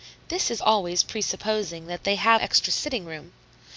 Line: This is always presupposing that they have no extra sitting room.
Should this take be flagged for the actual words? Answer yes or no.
yes